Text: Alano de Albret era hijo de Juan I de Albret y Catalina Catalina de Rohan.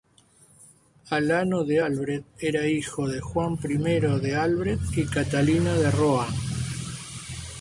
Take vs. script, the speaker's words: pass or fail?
fail